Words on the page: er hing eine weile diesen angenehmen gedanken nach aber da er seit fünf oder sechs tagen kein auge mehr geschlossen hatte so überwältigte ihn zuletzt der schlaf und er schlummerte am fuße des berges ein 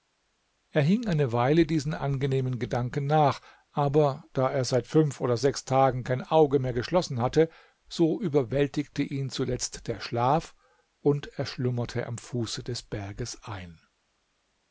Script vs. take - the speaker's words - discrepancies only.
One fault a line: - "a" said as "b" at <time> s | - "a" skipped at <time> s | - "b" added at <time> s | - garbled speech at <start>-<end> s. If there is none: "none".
none